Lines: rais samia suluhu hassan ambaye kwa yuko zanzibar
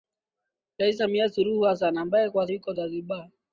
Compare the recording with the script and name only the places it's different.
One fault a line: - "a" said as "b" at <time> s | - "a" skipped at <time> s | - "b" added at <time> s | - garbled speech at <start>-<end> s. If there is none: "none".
none